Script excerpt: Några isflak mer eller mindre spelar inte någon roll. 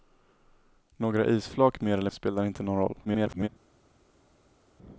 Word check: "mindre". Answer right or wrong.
wrong